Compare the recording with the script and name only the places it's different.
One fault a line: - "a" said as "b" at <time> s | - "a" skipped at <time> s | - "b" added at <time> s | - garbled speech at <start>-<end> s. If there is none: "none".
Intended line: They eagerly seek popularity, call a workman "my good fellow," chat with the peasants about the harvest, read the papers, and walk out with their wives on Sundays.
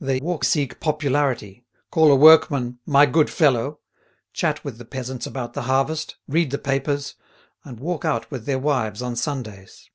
- "eagerly" said as "walk" at 0.2 s